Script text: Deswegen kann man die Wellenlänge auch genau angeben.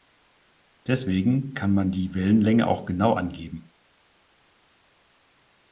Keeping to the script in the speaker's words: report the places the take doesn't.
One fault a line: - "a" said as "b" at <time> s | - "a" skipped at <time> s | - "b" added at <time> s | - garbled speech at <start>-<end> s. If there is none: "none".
none